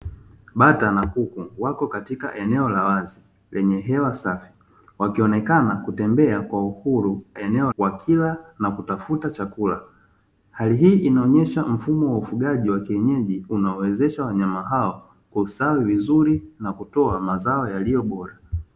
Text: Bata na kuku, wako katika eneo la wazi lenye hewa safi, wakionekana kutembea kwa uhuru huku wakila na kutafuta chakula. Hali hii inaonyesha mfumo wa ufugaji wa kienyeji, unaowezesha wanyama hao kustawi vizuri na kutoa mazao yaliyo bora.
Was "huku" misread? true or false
true